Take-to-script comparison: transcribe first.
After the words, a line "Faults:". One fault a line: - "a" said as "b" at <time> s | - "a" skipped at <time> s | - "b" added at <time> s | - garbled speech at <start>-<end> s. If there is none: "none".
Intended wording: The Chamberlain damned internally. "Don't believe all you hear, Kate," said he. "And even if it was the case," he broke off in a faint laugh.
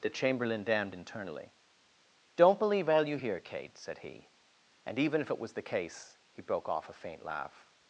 The Chamberlain damned internally. "Don't believe all you hear, Kate," said he. "And even if it was the case," he broke off a faint laugh.
Faults:
- "in" skipped at 6.9 s